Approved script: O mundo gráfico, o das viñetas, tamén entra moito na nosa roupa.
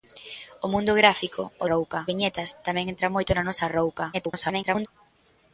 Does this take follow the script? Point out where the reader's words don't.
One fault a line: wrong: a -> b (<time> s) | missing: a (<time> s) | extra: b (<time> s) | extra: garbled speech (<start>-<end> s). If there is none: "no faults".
wrong: das -> roupa (1.7 s)
extra: garbled speech (4.1-4.9 s)